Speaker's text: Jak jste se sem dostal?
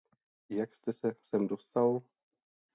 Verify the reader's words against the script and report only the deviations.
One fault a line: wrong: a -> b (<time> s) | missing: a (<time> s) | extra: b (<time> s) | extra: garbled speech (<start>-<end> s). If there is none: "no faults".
no faults